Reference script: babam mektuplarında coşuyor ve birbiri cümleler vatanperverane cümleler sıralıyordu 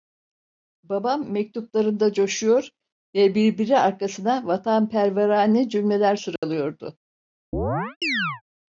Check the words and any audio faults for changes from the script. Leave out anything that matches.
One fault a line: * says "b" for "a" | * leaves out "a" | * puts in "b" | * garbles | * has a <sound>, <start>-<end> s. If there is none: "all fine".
* says "arkasına" for "cümleler"
* has a dropout, 6.4-6.4 s
* has a chirp, 7.5-8.4 s